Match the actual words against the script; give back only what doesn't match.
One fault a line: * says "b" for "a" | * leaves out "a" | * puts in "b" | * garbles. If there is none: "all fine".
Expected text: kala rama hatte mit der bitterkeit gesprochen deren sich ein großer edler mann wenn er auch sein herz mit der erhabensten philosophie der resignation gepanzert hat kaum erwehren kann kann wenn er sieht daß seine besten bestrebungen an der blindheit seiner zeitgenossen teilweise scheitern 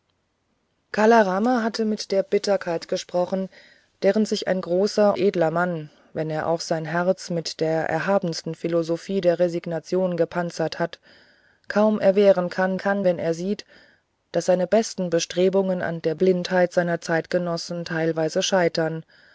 all fine